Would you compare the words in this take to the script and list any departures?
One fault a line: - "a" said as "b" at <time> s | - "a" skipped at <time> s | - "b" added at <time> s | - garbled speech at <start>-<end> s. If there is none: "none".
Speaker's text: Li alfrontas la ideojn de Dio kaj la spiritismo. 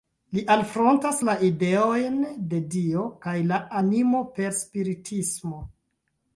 - "animo per" added at 3.8 s